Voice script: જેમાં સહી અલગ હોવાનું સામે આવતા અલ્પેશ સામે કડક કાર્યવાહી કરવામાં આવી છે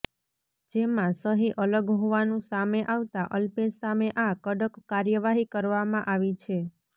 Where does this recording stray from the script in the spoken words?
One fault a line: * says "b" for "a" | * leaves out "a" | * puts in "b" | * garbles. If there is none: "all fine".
* puts in "આ"